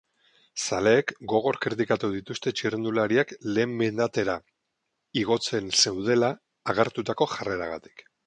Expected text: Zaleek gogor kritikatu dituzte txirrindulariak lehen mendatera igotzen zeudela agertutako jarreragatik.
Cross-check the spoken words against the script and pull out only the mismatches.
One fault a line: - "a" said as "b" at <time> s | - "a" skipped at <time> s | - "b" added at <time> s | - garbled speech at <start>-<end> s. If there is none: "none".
none